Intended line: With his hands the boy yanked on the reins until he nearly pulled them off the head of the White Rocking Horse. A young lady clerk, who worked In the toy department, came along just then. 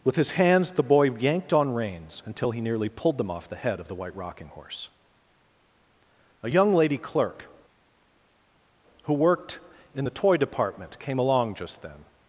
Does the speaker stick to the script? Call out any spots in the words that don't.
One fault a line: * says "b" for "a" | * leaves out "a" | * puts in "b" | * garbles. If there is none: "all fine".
* leaves out "the"